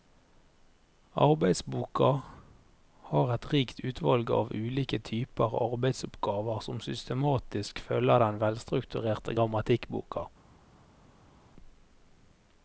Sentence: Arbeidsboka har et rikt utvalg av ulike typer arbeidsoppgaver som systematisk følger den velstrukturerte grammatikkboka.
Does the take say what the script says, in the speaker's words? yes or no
yes